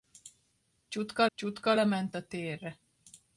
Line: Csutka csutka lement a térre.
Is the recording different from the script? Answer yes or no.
no